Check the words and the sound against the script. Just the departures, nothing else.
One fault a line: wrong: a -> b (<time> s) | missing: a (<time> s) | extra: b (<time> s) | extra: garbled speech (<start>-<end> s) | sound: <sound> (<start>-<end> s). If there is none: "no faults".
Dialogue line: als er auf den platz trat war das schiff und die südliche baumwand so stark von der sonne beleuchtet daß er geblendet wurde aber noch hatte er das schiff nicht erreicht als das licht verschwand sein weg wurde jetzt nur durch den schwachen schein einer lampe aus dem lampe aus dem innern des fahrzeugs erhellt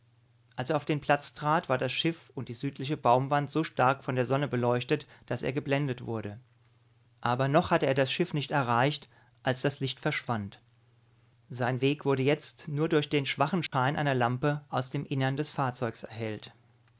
sound: dropout (13.7-13.7 s)
missing: lampe aus dem (15.1 s)